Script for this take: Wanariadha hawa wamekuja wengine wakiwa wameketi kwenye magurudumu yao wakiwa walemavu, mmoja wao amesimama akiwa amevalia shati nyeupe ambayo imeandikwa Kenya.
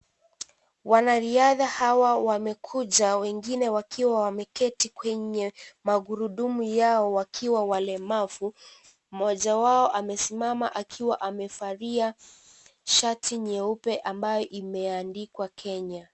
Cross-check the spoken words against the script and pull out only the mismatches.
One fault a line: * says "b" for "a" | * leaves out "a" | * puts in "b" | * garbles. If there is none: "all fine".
all fine